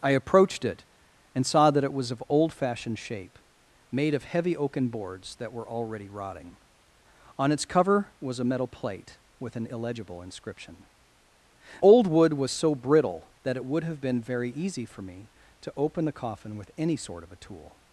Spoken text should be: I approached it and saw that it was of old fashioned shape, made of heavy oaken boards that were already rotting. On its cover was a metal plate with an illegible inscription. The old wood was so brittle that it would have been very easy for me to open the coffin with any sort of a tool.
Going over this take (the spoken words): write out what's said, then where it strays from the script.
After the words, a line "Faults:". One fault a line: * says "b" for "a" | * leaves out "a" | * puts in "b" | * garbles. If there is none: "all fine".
I approached it and saw that it was of old fashioned shape, made of heavy oaken boards that were already rotting. On its cover was a metal plate with an illegible inscription. Old wood was so brittle that it would have been very easy for me to open the coffin with any sort of a tool.
Faults:
* leaves out "The"